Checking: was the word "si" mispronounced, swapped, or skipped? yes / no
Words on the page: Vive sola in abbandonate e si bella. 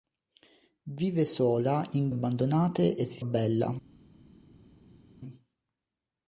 no